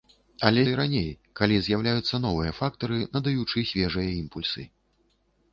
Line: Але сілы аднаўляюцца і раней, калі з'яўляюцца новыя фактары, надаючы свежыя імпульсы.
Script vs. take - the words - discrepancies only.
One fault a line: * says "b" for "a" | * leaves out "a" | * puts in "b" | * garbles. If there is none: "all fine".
* leaves out "сілы аднаўляюцца"